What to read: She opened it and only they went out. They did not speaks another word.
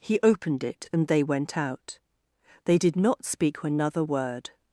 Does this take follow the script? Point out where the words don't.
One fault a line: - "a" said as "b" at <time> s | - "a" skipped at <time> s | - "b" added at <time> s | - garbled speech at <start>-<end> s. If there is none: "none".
- "She" said as "He" at 0.0 s
- "only" skipped at 1.1 s
- "speaks" said as "speak" at 3.2 s